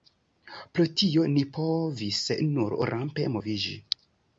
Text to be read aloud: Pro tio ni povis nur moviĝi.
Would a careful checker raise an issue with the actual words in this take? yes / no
yes